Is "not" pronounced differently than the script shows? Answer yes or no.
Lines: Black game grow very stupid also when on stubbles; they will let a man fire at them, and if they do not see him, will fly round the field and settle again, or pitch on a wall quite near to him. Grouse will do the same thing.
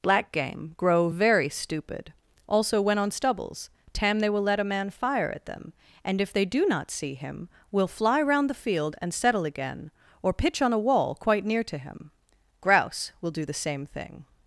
no